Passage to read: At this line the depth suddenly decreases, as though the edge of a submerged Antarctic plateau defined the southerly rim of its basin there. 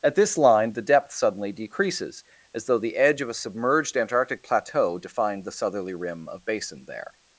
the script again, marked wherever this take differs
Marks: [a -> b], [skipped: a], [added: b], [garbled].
At this line the depth suddenly decreases, as though the edge of a submerged Antarctic plateau defined the southerly rim of [skipped: its] basin there.